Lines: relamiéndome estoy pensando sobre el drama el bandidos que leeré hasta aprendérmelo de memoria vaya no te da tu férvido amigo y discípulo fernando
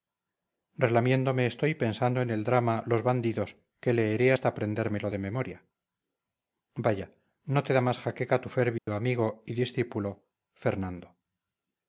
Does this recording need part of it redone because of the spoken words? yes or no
yes